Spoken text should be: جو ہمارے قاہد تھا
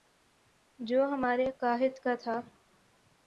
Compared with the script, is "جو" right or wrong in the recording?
right